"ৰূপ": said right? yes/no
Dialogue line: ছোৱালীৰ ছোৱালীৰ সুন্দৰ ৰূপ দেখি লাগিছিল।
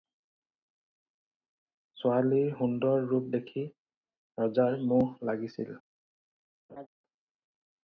yes